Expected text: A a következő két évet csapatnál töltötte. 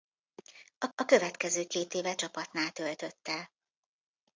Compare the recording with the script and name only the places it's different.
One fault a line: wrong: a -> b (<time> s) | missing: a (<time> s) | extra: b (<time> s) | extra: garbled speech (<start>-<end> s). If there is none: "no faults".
no faults